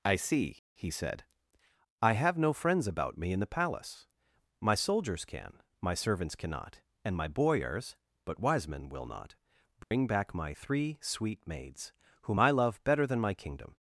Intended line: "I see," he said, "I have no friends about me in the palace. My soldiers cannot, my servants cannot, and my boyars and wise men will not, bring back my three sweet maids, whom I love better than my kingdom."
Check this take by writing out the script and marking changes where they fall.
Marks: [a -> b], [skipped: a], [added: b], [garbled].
"I see," he said, "I have no friends about me in the palace. My soldiers [cannot, -> can] my servants cannot, and my boyars [and -> but] wise men will not, bring back my three sweet maids, whom I love better than my kingdom."